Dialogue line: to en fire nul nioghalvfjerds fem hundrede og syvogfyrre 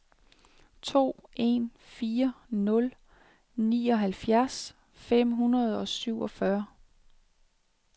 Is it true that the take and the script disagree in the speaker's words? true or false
false